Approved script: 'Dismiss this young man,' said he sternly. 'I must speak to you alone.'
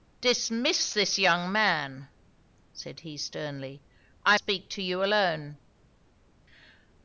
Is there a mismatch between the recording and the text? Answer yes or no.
yes